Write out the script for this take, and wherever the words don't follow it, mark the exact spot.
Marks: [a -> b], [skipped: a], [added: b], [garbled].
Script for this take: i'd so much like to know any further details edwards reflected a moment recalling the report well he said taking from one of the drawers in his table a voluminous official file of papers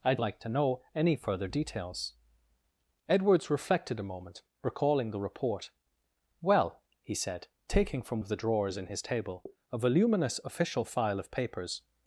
i'd [skipped: so much] like to know any further details edwards reflected a moment recalling the report well he said taking from [skipped: one] of the drawers in his table a voluminous official file of papers